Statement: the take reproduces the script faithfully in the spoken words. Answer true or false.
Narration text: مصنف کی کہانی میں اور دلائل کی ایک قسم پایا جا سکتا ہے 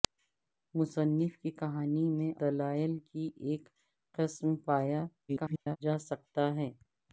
false